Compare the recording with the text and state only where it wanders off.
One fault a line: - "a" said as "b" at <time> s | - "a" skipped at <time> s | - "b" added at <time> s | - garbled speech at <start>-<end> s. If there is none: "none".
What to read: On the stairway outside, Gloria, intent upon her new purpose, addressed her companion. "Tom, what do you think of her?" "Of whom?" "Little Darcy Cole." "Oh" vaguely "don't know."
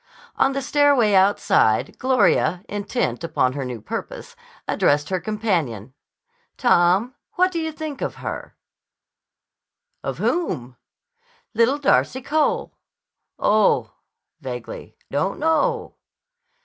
none